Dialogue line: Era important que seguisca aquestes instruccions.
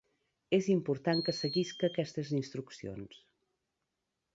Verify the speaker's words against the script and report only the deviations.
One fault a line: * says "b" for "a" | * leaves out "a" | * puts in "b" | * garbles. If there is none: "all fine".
* says "És" for "Era"